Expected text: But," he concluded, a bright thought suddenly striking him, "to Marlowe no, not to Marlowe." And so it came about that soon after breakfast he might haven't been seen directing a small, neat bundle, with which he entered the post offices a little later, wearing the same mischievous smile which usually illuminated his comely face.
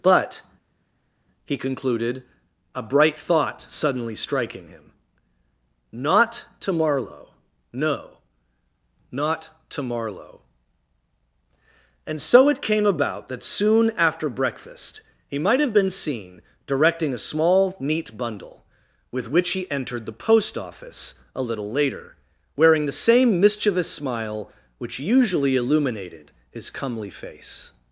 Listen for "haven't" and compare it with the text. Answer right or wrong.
wrong